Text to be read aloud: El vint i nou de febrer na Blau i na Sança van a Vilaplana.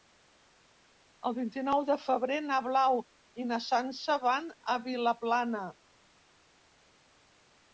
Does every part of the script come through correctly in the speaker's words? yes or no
yes